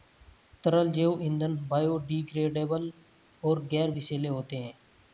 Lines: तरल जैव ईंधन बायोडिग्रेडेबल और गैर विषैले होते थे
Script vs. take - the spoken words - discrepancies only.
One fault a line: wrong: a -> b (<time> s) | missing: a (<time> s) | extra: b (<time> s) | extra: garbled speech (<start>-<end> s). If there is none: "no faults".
wrong: थे -> हैं (4.6 s)